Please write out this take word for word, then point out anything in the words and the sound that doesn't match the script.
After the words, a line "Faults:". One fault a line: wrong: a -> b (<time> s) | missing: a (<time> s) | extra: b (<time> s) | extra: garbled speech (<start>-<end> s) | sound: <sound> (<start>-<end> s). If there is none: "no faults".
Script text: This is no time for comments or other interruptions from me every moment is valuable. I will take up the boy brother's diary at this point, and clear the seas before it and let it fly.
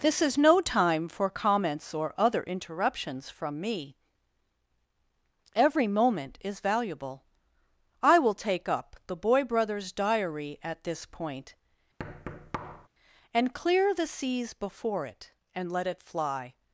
This is no time for comments or other interruptions from me every moment is valuable. I will take up the boy brother's diary at this point, and clear the seas before it and let it fly.
Faults:
sound: thud (12.0-12.9 s)